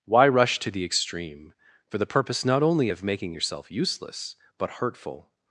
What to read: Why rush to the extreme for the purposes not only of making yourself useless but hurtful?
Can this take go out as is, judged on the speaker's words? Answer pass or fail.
fail